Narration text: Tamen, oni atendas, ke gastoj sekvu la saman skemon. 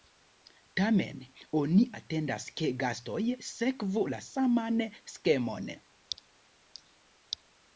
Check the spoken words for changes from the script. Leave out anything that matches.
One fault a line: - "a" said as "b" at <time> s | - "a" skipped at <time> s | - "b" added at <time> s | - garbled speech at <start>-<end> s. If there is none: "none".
none